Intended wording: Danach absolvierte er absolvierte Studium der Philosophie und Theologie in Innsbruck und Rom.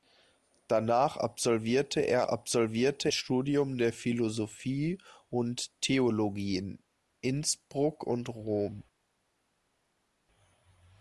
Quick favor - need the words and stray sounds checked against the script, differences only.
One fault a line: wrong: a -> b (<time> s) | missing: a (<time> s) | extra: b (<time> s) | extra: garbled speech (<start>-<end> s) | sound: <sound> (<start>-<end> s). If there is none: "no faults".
no faults